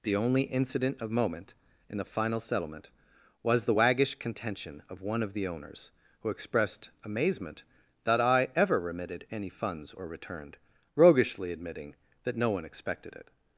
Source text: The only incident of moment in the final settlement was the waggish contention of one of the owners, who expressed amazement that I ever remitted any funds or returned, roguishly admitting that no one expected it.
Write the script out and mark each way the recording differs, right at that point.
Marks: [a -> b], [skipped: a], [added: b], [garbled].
The only incident of moment in the final settlement was the waggish contention of one of the owners, who expressed amazement that I ever remitted any funds or returned, roguishly admitting that no one expected it.